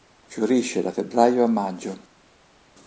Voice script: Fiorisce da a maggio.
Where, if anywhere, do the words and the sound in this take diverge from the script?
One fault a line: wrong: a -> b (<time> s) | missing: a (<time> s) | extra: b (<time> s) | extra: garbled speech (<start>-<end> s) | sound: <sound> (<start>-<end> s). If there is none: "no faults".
extra: febbraio (0.9 s)